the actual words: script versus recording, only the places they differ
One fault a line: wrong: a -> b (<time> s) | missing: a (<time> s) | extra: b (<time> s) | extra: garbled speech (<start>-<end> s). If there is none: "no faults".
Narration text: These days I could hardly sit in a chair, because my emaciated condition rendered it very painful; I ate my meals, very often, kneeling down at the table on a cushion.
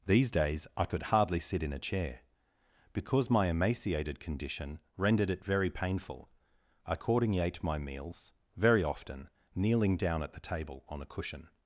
extra: accordingly (6.9 s)